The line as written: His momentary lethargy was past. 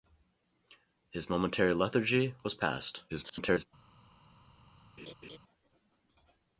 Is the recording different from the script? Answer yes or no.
yes